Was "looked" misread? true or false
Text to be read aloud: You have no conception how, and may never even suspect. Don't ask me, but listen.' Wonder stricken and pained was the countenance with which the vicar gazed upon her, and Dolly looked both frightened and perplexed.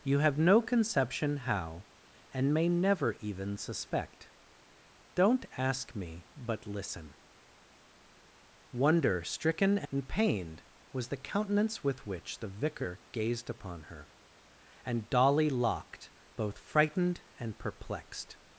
true